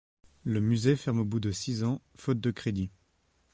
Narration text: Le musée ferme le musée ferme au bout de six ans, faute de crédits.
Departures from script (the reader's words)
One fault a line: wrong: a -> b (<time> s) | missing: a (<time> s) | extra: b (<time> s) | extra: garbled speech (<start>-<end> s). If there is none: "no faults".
missing: le musée ferme (1.2 s)